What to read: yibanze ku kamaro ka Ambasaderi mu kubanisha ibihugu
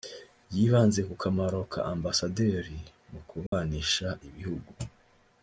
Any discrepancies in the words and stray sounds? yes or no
yes